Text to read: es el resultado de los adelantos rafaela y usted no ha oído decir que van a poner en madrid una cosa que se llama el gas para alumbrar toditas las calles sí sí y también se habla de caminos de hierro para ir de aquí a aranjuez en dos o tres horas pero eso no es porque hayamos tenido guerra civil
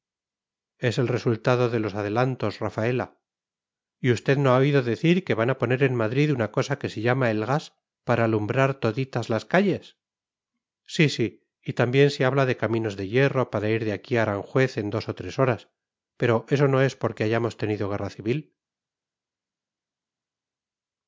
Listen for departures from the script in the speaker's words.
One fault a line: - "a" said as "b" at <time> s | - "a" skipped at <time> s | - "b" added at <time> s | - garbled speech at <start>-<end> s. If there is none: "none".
none